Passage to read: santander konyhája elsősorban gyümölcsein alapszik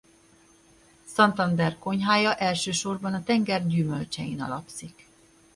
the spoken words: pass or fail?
fail